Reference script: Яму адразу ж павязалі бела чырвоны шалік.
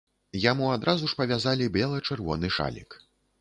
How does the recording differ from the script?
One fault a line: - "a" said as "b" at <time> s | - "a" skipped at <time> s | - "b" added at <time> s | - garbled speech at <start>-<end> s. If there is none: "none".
none